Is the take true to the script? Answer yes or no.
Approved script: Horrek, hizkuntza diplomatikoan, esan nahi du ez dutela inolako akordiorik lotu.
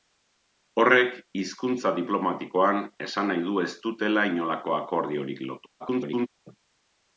no